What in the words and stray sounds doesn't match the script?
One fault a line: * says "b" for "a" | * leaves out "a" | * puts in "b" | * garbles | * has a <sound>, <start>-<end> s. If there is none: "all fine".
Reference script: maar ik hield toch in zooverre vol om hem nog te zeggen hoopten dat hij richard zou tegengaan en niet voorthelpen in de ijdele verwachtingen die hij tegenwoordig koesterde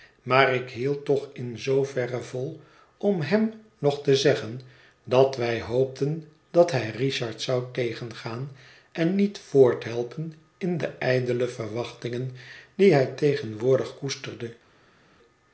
* puts in "dat wij"